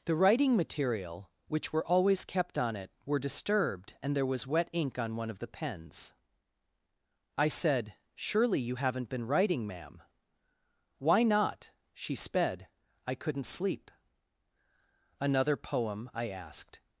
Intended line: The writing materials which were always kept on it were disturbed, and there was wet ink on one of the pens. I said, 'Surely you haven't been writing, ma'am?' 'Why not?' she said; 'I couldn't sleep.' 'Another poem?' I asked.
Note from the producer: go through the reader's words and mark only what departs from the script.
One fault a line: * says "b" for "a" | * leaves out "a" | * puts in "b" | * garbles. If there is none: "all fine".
* says "material" for "materials"
* says "sped" for "said"